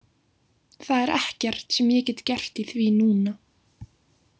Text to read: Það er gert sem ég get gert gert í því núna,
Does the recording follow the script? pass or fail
fail